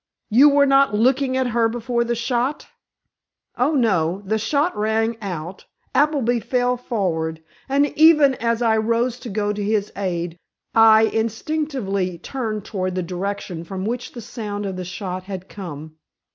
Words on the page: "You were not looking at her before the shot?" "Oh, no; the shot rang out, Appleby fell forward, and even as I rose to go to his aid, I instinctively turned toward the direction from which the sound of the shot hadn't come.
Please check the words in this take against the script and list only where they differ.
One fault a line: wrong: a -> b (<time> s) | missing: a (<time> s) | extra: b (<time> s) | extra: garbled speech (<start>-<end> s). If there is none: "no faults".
wrong: hadn't -> had (15.2 s)